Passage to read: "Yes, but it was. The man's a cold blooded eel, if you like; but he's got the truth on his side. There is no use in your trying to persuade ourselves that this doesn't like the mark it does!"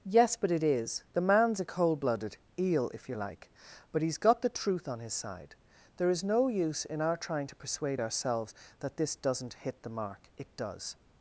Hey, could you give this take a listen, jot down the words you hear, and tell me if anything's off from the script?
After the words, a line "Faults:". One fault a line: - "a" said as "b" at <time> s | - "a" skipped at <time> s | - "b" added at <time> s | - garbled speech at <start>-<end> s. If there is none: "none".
"Yes, but it is. The man's a cold blooded eel, if you like; but he's got the truth on his side. There is no use in our trying to persuade ourselves that this doesn't hit the mark it does!"
Faults:
- "was" said as "is" at 0.6 s
- "your" said as "our" at 7.0 s
- "like" said as "hit" at 9.5 s